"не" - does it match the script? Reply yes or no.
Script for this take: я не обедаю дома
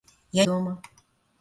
no